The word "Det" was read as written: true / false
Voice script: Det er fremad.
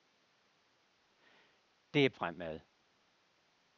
true